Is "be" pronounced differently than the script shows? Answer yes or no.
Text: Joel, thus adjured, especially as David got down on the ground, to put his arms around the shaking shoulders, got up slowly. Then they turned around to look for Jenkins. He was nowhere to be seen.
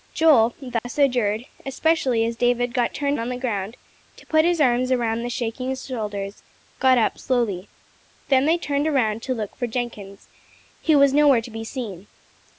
no